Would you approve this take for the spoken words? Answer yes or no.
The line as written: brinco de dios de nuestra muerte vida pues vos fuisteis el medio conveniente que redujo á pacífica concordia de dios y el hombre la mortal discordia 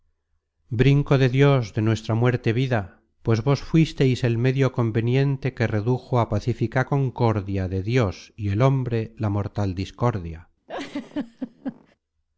yes